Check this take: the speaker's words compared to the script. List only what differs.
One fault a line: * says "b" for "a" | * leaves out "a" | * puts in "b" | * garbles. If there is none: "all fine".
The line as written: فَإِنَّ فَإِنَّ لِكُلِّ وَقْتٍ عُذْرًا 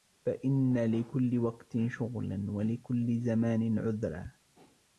* leaves out "فَإِنَّ"
* puts in "شُغْلًا وَلِكُلِّ زَمَانٍ"